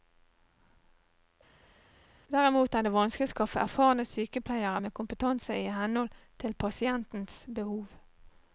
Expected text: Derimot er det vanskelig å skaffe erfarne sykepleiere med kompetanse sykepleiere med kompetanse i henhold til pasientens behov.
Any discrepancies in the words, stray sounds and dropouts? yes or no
yes